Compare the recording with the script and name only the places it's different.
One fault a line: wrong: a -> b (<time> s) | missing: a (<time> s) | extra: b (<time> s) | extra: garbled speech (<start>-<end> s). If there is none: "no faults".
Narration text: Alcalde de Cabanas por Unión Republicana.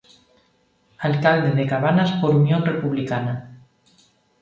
no faults